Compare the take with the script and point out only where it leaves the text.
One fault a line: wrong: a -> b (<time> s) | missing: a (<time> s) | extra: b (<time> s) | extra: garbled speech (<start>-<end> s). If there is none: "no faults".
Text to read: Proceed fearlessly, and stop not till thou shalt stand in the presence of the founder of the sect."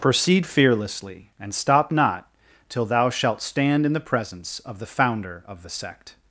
no faults